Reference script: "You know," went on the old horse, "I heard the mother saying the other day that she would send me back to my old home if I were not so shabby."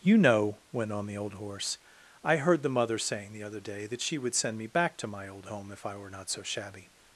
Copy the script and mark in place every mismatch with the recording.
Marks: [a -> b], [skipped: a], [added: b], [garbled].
"You know," went on the old horse, "I heard the mother saying the other day that she would send me back to my old home if I were not so shabby."